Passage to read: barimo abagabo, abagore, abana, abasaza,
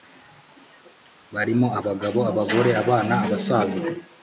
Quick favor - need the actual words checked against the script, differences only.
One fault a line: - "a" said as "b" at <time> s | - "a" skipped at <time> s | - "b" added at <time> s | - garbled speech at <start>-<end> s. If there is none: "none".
none